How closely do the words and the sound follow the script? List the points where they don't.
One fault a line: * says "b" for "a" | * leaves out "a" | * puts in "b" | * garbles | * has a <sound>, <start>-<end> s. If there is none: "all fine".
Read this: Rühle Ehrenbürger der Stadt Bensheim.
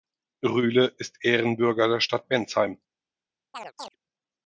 * puts in "ist"
* has a chirp, 3.5-4.0 s